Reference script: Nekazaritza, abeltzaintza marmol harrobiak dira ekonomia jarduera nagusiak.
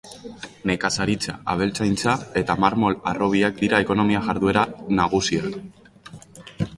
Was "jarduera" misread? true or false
false